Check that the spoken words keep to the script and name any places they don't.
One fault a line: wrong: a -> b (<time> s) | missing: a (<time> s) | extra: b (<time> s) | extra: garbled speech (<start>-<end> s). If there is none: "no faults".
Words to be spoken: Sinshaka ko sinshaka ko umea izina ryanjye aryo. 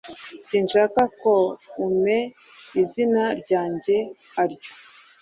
missing: sinshaka ko (1.3 s)